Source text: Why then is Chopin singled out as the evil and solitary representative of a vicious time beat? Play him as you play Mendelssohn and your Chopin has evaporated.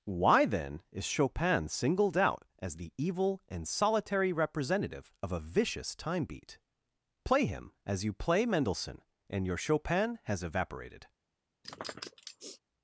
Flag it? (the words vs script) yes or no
no